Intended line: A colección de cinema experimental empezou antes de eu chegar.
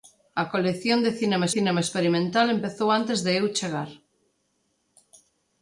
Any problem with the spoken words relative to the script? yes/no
yes